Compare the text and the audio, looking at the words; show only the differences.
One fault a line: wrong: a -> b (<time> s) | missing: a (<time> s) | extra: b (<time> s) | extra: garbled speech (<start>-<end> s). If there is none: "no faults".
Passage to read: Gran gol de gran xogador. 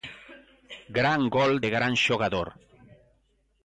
no faults